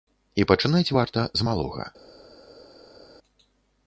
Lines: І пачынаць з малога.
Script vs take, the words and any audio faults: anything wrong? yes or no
yes